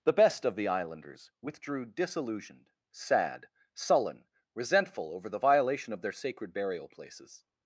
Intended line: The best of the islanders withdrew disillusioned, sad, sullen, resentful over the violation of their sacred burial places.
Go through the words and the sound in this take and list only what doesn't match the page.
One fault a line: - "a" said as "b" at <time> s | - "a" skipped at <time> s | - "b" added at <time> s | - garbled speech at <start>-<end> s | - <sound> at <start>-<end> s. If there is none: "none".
none